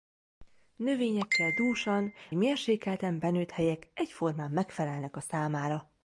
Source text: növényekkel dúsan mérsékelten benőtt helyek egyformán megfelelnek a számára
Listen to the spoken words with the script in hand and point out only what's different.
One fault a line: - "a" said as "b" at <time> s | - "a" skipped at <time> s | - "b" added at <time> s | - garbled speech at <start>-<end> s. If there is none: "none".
none